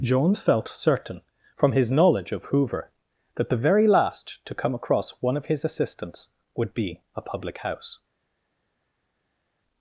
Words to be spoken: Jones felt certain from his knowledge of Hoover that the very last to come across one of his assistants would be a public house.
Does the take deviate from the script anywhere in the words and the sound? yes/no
no